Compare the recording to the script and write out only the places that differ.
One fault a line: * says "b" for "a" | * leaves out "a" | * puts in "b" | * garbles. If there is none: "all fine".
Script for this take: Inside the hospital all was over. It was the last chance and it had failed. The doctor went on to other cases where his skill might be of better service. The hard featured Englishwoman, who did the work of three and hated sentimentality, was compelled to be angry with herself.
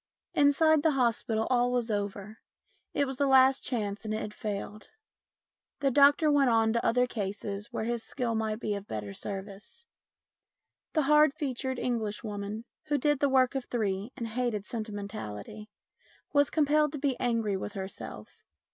all fine